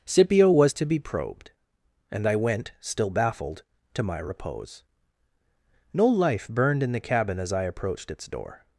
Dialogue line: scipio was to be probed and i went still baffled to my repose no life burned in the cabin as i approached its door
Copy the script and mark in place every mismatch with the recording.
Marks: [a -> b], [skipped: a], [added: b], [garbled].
scipio was to be probed and i went still baffled to my repose no life burned in the cabin as i approached its door